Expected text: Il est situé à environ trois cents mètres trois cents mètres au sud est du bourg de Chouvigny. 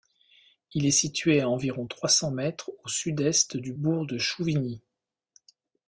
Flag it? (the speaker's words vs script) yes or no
yes